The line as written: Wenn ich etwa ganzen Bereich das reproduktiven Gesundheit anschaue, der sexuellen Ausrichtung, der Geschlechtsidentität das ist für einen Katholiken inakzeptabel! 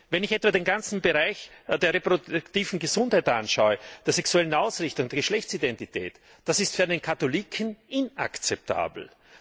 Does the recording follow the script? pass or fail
fail